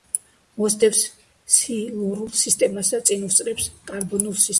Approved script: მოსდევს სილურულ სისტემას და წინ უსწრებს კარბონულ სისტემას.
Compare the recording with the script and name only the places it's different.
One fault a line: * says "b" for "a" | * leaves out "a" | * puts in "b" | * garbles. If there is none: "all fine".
all fine